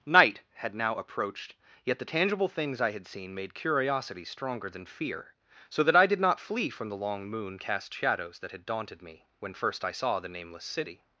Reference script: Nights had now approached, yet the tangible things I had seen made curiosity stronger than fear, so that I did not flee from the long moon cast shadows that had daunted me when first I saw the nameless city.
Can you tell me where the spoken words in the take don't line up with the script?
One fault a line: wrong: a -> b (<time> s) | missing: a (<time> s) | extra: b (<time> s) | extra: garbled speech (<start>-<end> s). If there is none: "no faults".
wrong: Nights -> Night (0.1 s)